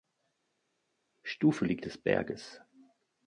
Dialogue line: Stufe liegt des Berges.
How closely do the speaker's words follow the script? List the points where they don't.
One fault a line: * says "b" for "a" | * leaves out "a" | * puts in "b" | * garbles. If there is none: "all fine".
all fine